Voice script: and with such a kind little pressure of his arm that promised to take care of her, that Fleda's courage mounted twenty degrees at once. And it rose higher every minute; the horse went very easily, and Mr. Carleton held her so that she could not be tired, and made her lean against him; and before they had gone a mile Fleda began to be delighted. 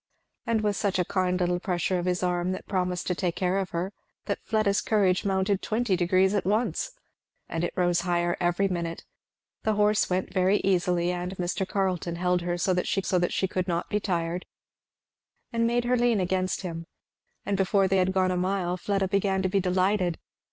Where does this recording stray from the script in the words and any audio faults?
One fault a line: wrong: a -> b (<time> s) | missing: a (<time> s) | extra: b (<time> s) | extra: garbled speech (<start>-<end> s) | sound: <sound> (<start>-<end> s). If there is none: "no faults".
extra: so that she (13.0 s)